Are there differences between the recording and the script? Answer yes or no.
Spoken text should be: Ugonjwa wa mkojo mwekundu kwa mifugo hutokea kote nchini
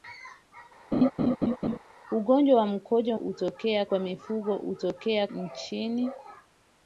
yes